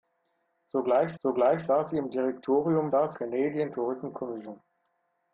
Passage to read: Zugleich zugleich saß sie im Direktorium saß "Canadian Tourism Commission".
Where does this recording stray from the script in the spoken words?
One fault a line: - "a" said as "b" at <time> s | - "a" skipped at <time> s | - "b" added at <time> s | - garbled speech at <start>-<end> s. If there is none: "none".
none